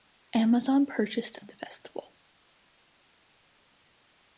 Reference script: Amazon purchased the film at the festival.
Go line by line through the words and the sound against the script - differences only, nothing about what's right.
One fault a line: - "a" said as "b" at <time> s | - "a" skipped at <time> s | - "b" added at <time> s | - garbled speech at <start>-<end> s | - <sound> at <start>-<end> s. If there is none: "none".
- "the film" skipped at 1.4 s